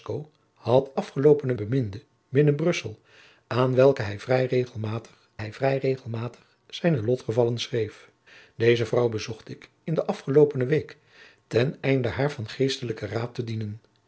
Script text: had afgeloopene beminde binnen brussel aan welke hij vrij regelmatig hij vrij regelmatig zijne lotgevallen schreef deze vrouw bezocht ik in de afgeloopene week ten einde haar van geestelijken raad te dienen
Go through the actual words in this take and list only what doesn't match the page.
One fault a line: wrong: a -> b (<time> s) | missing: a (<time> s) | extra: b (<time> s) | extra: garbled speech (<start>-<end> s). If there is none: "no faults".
no faults